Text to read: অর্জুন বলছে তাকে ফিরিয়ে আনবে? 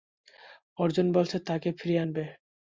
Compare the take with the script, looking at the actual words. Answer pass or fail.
pass